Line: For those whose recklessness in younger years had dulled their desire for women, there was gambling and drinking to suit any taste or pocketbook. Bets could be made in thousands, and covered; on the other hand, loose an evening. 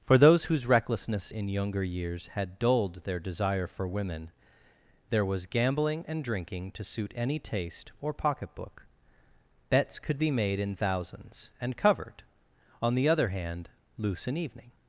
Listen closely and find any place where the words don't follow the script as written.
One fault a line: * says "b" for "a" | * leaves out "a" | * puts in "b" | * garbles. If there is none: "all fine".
all fine